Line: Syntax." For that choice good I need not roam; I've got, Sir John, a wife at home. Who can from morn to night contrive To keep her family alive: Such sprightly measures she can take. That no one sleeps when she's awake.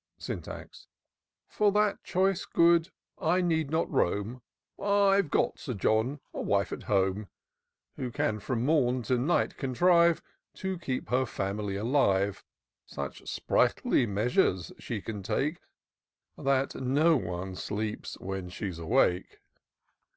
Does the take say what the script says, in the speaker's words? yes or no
yes